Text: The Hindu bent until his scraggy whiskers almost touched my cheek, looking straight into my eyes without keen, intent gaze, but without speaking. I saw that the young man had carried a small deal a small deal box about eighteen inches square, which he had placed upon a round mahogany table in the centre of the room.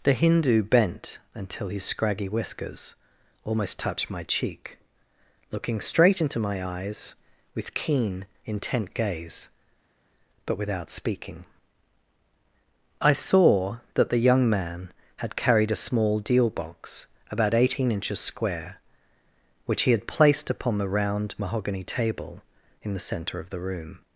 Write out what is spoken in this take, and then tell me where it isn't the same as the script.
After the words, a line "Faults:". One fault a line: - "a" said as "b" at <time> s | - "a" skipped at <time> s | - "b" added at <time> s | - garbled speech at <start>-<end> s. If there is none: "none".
The Hindu bent until his scraggy whiskers almost touched my cheek, looking straight into my eyes with keen, intent gaze, but without speaking. I saw that the young man had carried a small deal box about eighteen inches square, which he had placed upon the round mahogany table in the centre of the room.
Faults:
- "without" said as "with" at 7.5 s
- "a small deal" skipped at 16.5 s
- "a" said as "the" at 20.8 s